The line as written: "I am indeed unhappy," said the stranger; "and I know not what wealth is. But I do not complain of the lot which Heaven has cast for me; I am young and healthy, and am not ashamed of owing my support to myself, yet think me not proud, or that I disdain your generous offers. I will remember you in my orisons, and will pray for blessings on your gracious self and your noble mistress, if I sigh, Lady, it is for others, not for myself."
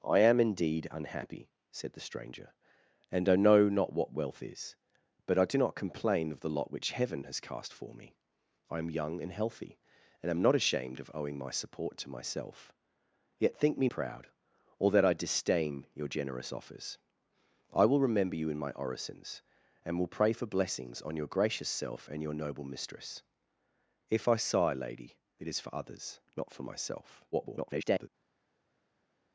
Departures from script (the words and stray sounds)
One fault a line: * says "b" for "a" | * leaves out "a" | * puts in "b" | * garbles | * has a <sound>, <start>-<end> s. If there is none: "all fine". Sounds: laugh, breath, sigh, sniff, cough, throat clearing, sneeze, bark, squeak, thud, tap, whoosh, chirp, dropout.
* leaves out "not"
* garbles